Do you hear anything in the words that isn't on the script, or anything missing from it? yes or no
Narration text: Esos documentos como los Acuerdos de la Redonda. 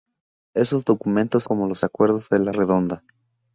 no